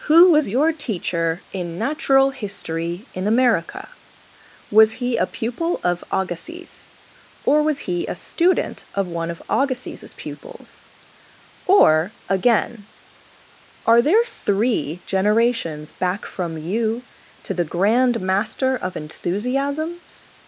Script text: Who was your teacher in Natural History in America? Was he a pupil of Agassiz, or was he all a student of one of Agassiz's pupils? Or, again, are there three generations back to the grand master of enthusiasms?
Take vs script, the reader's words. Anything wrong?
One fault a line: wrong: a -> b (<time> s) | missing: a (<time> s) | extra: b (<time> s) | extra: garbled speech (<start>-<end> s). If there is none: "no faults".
missing: all (8.1 s)
extra: from you (16.2 s)